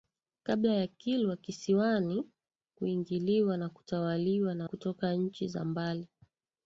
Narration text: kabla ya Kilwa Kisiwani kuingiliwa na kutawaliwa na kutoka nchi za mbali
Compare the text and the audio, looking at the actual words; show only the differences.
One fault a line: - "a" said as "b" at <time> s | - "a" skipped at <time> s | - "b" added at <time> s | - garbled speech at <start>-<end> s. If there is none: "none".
none